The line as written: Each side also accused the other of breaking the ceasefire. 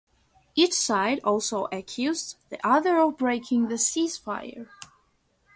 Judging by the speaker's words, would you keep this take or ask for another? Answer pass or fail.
pass